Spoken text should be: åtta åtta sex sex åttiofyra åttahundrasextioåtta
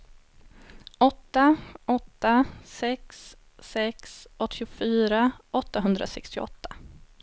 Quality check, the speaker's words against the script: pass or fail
pass